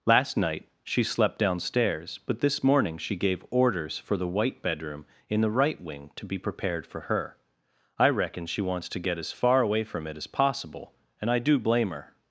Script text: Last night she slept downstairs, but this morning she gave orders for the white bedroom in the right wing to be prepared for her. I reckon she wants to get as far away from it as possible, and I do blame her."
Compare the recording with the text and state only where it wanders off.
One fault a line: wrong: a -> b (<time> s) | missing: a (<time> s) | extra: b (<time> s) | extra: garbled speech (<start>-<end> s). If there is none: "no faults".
no faults